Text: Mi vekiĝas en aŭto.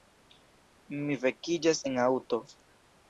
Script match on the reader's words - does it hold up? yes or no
yes